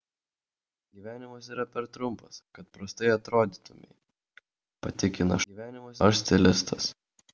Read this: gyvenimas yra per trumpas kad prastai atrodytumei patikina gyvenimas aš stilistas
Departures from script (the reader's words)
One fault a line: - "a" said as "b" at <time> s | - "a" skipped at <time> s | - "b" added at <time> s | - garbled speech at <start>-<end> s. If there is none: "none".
none